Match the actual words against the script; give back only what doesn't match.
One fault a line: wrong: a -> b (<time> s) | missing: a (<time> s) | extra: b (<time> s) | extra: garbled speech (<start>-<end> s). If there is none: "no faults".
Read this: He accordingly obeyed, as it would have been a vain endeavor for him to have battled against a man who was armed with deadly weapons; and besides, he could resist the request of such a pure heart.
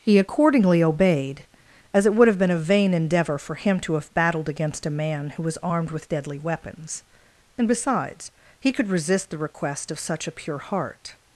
no faults